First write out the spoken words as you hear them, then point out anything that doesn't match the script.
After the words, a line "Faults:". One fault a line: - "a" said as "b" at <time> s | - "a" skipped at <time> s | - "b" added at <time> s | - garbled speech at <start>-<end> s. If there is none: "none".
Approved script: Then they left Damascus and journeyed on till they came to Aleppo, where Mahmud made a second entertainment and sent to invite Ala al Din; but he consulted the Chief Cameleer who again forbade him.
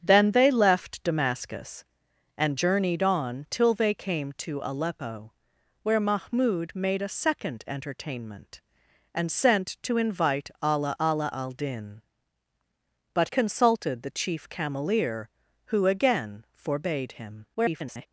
Then they left Damascus and journeyed on till they came to Aleppo, where Mahmud made a second entertainment and sent to invite Ala Ala al Din; but consulted the Chief Cameleer who again forbade him. [garbled]
Faults:
- "Ala" added at 11.0 s
- "he" skipped at 13.3 s
- garbled speech at 17.5-18.1 s